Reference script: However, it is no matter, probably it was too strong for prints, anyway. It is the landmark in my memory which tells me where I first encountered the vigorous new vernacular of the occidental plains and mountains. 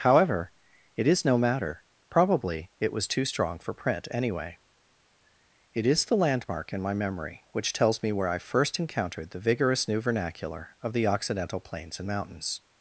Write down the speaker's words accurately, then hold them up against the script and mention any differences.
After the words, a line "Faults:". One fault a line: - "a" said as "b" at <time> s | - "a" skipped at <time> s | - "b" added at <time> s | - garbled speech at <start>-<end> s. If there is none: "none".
However, it is no matter, probably it was too strong for print, anyway. It is the landmark in my memory which tells me where I first encountered the vigorous new vernacular of the occidental plains and mountains.
Faults:
- "prints" said as "print" at 3.7 s